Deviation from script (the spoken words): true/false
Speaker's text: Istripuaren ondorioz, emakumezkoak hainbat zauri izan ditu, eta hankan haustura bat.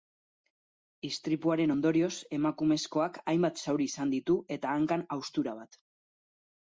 false